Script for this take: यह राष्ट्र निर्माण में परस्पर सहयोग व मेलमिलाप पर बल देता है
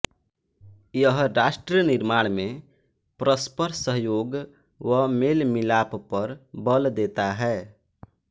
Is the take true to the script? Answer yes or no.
yes